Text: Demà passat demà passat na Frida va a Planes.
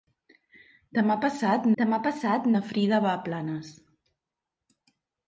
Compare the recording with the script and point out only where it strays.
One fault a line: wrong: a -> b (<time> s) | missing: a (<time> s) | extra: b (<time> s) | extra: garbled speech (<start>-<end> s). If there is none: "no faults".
no faults